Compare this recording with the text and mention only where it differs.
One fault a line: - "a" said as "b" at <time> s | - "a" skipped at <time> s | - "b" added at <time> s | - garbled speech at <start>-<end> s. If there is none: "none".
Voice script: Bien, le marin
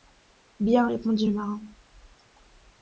- "répondit" added at 0.9 s